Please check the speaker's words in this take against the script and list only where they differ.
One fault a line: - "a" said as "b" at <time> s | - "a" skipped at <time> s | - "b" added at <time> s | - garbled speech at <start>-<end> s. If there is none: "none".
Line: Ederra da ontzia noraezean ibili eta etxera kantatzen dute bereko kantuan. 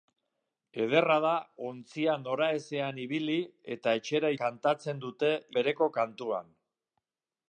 none